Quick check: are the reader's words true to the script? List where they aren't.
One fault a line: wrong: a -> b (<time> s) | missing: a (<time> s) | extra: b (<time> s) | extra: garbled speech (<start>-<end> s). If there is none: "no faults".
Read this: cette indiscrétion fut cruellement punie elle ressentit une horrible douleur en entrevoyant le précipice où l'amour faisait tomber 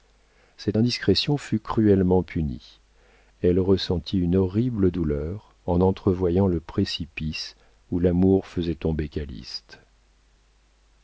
no faults